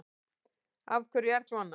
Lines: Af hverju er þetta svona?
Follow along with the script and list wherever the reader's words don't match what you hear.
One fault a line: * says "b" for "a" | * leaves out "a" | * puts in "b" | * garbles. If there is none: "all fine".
* leaves out "þetta"